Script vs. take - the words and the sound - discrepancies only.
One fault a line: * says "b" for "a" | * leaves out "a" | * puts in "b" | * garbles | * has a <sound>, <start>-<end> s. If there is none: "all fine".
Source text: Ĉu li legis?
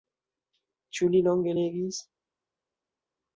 * puts in "longe"